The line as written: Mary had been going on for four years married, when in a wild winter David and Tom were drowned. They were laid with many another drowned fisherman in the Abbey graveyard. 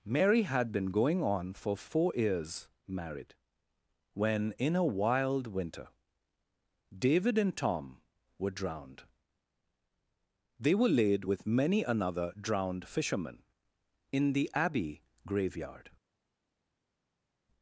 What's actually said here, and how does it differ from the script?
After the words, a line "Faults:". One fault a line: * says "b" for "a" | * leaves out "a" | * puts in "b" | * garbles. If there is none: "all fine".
Mary had been going on for four years married, when in a wild winter David and Tom were drowned. They were laid with many another drowned fisherman in the Abbey graveyard.
Faults:
all fine